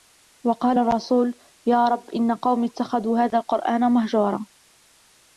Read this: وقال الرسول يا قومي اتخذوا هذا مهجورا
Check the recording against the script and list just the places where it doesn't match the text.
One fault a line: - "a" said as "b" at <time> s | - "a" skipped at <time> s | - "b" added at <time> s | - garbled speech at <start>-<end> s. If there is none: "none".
- "رب إن" added at 1.9 s
- "القرآن" added at 3.4 s